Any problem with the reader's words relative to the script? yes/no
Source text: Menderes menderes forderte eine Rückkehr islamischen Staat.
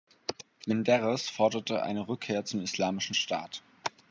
yes